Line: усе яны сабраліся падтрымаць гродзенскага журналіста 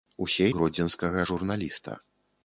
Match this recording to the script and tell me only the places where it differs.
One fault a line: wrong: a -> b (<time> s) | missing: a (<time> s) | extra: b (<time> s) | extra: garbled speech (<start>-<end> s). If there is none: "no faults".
missing: яны сабраліся падтрымаць (0.5 s)